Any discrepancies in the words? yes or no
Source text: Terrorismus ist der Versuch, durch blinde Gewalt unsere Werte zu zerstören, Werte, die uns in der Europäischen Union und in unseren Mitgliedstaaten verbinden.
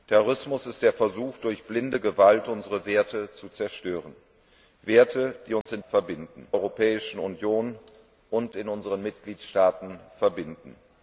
yes